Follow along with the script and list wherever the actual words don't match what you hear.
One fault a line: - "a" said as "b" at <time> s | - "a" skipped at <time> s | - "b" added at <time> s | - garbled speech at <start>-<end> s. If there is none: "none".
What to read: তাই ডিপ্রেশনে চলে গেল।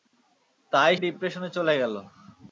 none